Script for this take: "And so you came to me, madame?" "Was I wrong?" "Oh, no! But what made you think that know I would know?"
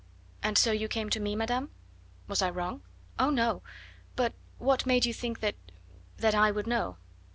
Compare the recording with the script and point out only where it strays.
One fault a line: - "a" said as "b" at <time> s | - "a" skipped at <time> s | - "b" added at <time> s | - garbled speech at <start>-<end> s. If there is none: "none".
- "know" said as "that" at 6.2 s